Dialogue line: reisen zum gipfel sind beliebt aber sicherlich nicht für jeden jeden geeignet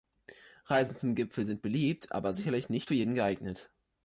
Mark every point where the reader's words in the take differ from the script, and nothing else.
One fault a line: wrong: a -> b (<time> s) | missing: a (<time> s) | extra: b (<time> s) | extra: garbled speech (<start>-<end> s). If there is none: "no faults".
missing: jeden (3.1 s)